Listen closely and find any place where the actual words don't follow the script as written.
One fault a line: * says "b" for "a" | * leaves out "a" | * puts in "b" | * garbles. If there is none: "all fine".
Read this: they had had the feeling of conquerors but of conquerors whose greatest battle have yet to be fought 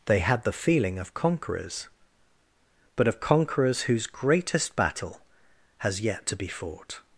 * leaves out "had"
* says "has" for "have"